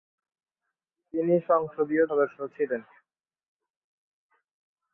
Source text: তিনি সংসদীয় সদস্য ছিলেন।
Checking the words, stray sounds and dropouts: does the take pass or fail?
pass